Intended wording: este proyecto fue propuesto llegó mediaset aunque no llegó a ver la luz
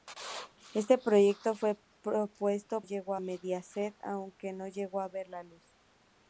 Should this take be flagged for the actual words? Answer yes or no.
no